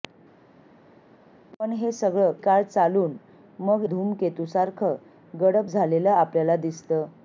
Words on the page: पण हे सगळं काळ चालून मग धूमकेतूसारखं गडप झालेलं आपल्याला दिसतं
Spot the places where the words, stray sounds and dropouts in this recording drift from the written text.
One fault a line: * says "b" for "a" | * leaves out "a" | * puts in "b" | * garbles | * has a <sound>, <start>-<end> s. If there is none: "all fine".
all fine